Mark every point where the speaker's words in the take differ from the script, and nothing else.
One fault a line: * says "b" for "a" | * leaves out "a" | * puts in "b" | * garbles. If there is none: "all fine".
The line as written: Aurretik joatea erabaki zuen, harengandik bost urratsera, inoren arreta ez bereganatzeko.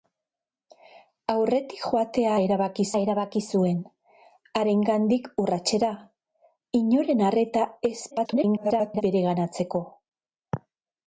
* puts in "erabaki"
* leaves out "bost"
* garbles